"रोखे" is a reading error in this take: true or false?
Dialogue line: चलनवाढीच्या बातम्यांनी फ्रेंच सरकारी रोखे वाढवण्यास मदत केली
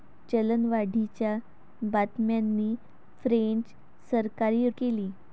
true